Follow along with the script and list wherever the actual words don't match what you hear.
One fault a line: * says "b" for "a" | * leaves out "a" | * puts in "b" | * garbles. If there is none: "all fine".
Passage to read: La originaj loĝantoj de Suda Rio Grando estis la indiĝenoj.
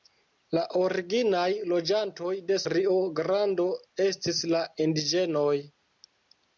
* leaves out "Suda"